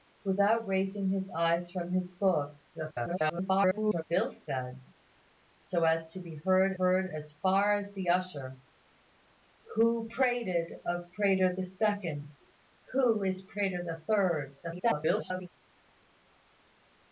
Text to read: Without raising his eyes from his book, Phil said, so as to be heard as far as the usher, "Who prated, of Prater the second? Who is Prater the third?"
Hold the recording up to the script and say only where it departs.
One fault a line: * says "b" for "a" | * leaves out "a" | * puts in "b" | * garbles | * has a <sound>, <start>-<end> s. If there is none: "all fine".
* garbles
* puts in "heard"
* garbles